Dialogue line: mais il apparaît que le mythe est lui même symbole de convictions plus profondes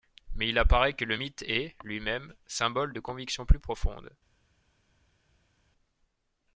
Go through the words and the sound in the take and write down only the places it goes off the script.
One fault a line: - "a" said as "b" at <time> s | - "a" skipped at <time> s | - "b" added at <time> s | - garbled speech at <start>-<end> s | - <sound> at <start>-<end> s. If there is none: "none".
none